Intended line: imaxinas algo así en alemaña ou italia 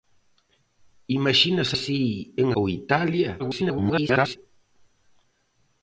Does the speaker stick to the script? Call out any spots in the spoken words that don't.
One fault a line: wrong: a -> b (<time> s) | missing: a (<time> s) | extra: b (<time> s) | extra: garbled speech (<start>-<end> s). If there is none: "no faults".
missing: algo (1.7 s)
missing: alemaña (2.5 s)
extra: garbled speech (3.4-4.4 s)